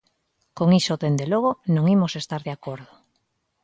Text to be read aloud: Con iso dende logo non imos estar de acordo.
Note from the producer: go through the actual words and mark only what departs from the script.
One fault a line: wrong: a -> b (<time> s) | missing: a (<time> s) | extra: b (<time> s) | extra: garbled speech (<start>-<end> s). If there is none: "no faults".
no faults